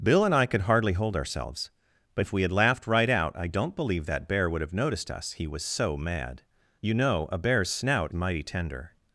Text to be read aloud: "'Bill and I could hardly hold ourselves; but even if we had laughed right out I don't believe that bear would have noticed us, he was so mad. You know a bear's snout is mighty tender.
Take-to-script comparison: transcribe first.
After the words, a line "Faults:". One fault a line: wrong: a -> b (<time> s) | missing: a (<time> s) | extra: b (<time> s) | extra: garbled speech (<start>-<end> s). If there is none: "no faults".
"'Bill and I could hardly hold ourselves; but if we had laughed right out I don't believe that bear would have noticed us, he was so mad. You know a bear's snout mighty tender.
Faults:
missing: even (2.2 s)
missing: is (8.1 s)